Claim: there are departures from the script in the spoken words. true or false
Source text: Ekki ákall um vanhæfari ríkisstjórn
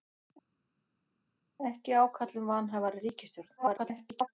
true